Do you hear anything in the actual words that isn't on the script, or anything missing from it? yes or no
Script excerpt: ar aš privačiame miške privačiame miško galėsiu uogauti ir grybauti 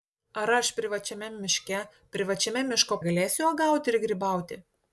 no